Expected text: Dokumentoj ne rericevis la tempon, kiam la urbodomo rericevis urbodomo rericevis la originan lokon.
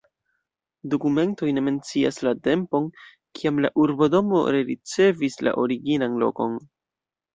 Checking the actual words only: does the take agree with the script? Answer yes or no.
no